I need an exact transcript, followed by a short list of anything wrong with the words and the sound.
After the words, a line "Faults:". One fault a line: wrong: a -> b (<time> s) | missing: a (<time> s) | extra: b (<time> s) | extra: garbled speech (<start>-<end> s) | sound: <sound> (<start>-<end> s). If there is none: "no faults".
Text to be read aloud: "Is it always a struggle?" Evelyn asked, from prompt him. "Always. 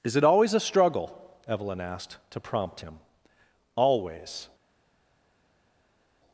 "Is it always a struggle?" Evelyn asked, to prompt him. "Always.
Faults:
wrong: from -> to (2.3 s)